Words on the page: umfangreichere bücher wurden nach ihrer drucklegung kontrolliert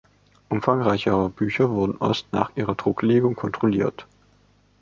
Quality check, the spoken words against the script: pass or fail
fail